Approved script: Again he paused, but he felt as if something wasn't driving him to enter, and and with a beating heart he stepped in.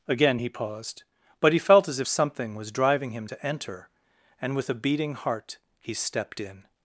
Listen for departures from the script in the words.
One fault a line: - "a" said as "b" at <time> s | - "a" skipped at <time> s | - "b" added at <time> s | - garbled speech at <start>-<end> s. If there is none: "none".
- "wasn't" said as "was" at 2.5 s
- "and" skipped at 4.6 s